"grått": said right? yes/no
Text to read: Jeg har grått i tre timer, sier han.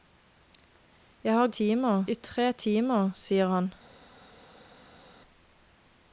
no